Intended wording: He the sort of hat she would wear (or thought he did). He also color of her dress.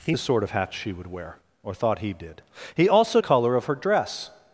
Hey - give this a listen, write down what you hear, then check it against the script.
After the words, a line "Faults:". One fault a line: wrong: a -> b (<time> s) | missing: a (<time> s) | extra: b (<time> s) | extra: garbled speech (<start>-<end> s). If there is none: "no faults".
He the sort of hat she would wear (or thought he did). He also color of her dress.
Faults:
no faults